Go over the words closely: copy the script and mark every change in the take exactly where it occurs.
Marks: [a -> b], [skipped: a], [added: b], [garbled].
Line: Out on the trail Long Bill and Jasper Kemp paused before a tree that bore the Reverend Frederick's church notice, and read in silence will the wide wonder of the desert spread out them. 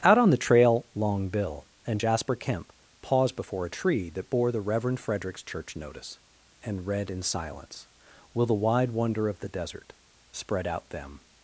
Out on the trail Long Bill and Jasper Kemp paused before a tree that bore the Reverend Frederick's church notice, and read in silence will the wide wonder of the desert spread out them.